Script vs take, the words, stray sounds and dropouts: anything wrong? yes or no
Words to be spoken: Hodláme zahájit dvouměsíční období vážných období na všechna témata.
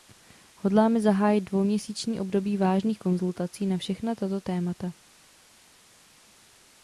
yes